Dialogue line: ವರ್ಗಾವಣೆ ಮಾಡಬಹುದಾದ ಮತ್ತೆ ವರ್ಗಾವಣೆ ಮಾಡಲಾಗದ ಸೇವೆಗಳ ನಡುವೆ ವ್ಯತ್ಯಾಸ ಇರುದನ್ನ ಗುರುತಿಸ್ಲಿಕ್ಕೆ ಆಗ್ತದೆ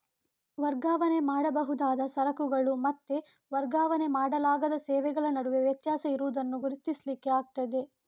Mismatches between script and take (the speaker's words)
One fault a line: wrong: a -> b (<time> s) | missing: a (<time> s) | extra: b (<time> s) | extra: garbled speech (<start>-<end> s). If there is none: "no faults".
extra: ಸರಕುಗಳು (2.1 s)